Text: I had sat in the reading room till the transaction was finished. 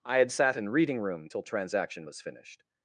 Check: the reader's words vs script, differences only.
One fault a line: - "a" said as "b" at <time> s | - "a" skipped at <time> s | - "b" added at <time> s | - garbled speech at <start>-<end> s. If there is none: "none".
- "the" skipped at 0.7 s
- "the" skipped at 1.4 s